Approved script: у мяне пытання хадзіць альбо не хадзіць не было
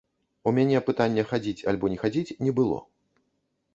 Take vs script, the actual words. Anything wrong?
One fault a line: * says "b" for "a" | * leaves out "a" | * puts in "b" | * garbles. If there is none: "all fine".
all fine